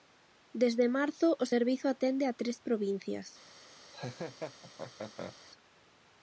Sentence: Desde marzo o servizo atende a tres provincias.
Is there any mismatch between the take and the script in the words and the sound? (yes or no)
yes